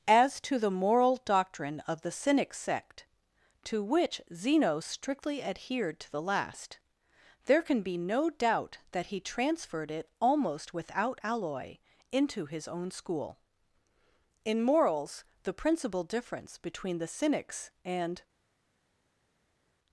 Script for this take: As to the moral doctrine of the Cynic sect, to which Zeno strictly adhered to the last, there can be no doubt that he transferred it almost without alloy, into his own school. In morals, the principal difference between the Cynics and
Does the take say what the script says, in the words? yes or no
yes